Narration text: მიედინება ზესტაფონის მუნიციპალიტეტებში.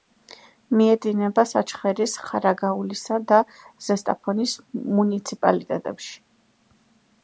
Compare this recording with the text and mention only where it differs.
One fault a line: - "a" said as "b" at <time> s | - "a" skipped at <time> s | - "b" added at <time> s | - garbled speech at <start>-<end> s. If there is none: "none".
- "საჩხერის ხარაგაულისა და" added at 1.5 s